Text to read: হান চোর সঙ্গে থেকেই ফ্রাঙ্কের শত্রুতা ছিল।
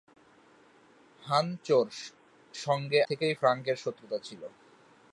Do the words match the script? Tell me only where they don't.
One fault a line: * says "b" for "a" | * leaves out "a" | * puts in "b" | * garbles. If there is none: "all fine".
all fine